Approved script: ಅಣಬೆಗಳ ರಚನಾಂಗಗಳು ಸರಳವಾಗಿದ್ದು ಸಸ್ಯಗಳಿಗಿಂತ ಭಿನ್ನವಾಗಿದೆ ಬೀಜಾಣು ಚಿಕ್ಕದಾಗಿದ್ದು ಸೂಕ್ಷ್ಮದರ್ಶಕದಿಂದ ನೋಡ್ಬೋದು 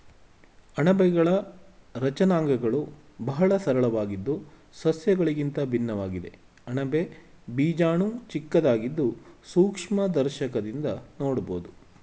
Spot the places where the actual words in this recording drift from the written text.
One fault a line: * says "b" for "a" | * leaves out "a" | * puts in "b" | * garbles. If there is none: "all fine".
* puts in "ಬಹಳ"
* puts in "ಅಣಬೆ"